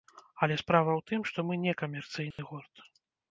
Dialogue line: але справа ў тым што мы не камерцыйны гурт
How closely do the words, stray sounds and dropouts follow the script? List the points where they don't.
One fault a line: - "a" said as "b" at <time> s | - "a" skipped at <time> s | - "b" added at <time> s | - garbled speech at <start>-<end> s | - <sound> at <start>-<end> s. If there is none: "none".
- dropout at 2.3-2.4 s